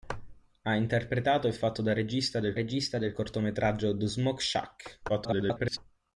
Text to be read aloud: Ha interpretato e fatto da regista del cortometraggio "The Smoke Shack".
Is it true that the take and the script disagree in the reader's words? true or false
true